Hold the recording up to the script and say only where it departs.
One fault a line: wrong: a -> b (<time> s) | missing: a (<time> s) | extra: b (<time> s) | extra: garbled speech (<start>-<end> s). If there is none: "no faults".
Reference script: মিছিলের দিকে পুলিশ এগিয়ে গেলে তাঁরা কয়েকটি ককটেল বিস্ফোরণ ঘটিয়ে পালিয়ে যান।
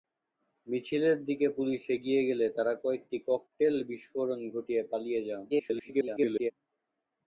extra: garbled speech (5.5-6.5 s)